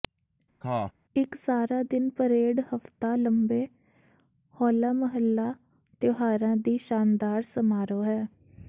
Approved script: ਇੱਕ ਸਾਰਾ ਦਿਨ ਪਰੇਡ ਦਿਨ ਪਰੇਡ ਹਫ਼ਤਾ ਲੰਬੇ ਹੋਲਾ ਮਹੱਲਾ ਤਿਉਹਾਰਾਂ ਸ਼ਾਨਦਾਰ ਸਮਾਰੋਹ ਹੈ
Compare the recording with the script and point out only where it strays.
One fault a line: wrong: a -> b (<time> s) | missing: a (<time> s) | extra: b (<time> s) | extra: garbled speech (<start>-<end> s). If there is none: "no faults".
missing: ਦਿਨ ਪਰੇਡ (2.6 s)
extra: ਦੀ (6.6 s)